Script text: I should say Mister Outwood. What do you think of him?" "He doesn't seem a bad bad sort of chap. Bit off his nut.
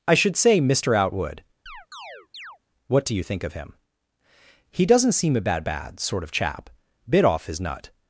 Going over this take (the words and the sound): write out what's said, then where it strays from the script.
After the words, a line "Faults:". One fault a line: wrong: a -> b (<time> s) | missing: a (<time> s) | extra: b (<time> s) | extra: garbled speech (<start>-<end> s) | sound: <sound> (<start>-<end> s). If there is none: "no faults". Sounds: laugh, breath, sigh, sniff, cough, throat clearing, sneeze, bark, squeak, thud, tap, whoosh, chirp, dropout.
I should say Mister Outwood. What do you think of him?" "He doesn't seem a bad bad sort of chap. Bit off his nut.
Faults:
sound: chirp (1.7-2.6 s)